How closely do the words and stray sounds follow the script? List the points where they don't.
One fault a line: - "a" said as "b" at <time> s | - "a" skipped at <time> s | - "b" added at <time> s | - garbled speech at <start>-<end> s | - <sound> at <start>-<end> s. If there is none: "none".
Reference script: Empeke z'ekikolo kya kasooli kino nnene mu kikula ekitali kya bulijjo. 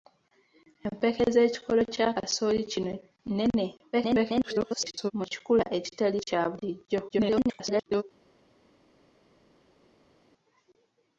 - garbled speech at 3.9-5.1 s
- garbled speech at 7.1-8.0 s